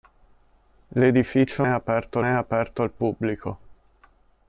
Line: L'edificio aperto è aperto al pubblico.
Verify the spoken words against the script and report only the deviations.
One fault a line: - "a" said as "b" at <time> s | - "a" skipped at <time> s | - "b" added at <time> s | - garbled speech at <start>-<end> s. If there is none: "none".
none